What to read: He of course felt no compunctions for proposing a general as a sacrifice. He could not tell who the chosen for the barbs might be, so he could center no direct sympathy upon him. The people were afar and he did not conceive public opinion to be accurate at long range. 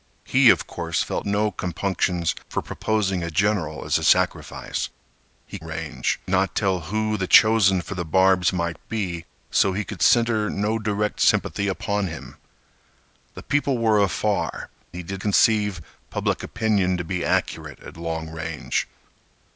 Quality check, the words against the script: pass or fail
fail